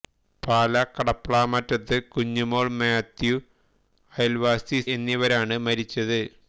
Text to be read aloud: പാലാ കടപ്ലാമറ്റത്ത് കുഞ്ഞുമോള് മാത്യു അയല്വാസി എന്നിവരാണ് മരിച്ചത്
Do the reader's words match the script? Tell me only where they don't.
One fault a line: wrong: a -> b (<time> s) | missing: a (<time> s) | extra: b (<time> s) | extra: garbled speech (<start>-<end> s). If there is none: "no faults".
no faults